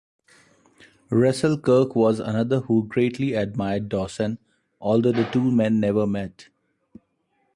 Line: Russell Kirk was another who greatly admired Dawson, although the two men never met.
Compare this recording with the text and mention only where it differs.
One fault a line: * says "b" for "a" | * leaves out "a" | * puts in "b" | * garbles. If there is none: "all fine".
all fine